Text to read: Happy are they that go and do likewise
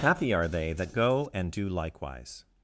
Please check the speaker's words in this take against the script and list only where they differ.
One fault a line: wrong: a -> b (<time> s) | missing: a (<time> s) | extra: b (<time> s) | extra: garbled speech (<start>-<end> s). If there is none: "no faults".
no faults